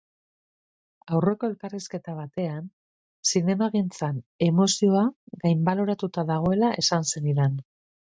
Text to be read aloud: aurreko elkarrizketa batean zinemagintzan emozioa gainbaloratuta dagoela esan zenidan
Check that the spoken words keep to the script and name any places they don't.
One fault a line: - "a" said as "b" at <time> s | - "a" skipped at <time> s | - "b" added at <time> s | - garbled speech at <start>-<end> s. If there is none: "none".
none